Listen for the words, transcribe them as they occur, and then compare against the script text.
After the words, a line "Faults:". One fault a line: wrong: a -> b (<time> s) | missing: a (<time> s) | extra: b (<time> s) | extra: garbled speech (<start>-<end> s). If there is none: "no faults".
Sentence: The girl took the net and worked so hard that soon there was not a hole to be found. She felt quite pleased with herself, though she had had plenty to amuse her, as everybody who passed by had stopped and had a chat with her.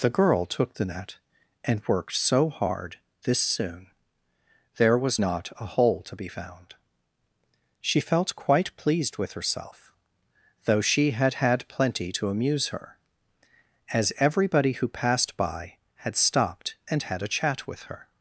The girl took the net and worked so hard this soon there was not a hole to be found. She felt quite pleased with herself, though she had had plenty to amuse her, as everybody who passed by had stopped and had a chat with her.
Faults:
wrong: that -> this (3.2 s)